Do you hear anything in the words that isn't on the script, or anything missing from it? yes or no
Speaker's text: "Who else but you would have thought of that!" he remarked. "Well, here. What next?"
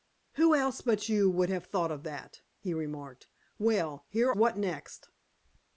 no